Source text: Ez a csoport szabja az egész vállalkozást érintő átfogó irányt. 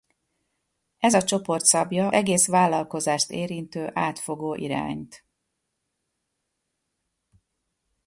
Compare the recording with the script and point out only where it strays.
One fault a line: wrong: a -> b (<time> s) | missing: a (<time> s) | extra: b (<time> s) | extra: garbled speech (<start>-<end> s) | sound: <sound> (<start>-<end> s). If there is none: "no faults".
missing: az (2.1 s)